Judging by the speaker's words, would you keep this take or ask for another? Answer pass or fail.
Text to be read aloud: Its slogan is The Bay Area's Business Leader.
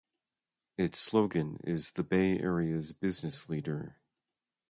pass